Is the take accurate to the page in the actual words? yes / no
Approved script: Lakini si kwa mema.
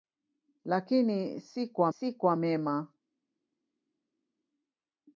no